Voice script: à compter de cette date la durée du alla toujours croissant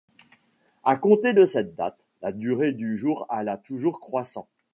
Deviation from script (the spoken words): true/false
true